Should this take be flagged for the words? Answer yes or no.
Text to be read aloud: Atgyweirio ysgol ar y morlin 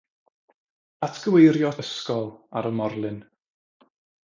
no